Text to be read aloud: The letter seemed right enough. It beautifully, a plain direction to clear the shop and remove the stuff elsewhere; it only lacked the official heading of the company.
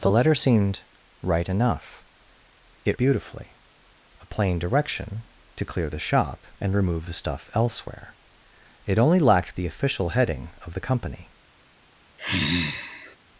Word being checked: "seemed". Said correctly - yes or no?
yes